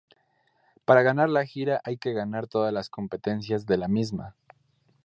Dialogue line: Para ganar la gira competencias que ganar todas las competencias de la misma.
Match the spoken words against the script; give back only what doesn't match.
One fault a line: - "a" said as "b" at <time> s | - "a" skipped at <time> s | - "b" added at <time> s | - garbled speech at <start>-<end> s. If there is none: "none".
- "competencias" said as "hay" at 1.8 s